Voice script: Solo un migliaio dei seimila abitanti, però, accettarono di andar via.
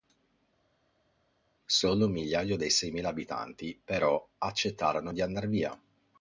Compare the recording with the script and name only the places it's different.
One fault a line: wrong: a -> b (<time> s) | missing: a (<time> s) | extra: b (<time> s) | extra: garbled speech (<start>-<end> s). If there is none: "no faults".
no faults